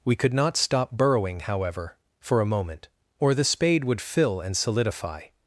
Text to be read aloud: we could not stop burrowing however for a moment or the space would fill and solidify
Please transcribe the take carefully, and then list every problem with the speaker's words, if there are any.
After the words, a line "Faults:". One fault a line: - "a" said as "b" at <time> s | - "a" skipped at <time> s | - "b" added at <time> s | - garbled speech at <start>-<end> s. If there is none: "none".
we could not stop burrowing however for a moment or the spade would fill and solidify
Faults:
- "space" said as "spade" at 3.4 s